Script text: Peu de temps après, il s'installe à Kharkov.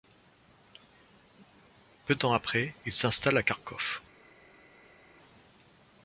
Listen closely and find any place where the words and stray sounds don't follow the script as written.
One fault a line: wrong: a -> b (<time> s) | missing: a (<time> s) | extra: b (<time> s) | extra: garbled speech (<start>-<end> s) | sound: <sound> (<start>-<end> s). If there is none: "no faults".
missing: de (2.1 s)